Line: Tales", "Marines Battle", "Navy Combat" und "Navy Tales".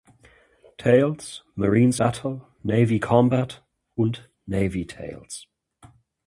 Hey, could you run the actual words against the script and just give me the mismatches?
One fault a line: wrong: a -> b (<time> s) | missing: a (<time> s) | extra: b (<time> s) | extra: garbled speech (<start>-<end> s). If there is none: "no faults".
no faults